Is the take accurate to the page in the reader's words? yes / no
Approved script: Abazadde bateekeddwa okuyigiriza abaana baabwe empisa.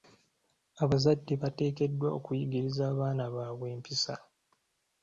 yes